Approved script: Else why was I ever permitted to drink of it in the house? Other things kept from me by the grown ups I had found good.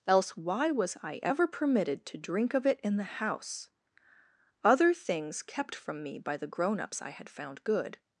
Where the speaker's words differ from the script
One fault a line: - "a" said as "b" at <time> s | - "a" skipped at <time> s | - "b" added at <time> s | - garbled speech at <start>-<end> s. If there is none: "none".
none